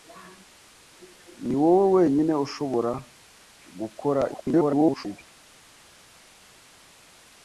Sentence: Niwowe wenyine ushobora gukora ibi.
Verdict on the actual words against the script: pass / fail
fail